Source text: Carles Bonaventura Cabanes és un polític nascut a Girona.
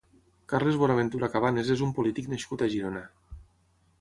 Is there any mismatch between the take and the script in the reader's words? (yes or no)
no